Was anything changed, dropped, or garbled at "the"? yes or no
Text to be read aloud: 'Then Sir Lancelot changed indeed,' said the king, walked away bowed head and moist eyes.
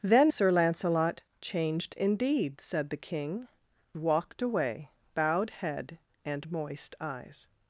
no